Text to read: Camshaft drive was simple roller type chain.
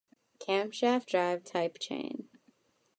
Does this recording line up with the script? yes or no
no